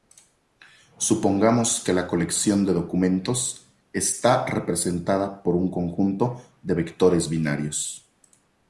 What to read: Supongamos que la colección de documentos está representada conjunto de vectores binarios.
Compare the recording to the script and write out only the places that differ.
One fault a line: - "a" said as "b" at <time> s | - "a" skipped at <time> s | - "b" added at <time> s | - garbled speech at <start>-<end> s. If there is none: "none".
- "por un" added at 5.4 s